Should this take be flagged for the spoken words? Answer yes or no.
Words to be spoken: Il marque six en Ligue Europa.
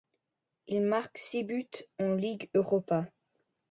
yes